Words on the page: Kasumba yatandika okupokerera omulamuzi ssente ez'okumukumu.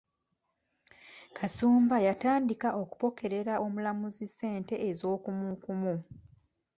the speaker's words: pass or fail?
pass